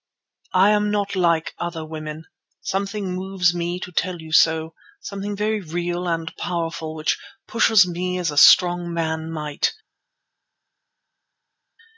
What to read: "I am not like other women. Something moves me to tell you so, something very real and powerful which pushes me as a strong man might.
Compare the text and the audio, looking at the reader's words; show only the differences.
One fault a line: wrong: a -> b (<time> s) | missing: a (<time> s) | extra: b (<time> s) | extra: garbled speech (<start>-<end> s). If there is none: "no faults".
no faults